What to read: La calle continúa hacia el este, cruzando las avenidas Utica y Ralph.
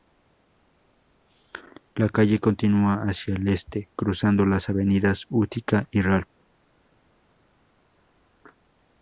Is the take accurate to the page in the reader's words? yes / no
yes